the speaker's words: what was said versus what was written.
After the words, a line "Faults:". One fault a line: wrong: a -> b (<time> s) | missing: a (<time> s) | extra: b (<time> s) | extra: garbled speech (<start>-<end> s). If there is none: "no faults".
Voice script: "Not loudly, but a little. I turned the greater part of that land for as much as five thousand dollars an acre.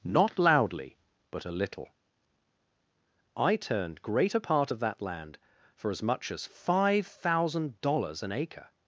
"Not loudly, but a little. I turned greater part of that land for as much as five thousand dollars an acre.
Faults:
missing: the (4.0 s)